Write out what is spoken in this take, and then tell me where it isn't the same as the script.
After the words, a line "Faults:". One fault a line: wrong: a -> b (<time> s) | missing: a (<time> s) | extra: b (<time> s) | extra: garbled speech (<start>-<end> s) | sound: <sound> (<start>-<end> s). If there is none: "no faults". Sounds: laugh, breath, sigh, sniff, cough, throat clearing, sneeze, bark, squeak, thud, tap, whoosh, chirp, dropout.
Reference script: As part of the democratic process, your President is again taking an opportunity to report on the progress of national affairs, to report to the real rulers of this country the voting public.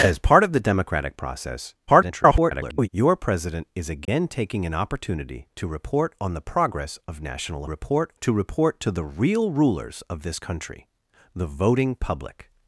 As part of the democratic process, [garbled] your President is again taking an opportunity to report on the progress of national report, to report to the real rulers of this country the voting public.
Faults:
extra: garbled speech (1.9-2.9 s)
sound: dropout (4.0-4.1 s)
wrong: affairs -> report (7.6 s)